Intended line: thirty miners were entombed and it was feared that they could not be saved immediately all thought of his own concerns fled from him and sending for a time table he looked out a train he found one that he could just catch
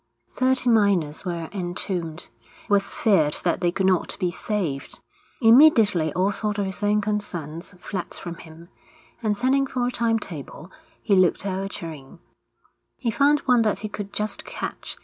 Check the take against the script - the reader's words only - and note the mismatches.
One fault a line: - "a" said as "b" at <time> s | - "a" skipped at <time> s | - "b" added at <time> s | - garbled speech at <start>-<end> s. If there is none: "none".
- "and it" skipped at 2.3 s